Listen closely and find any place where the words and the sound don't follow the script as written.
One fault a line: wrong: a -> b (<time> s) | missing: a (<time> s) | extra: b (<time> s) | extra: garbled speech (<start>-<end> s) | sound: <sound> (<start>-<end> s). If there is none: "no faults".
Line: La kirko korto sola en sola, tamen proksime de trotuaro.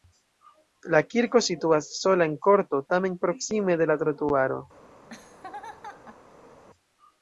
wrong: korto -> situas (1.5 s)
wrong: sola -> korto (2.5 s)
extra: la (3.9 s)
sound: laugh (5.0-6.6 s)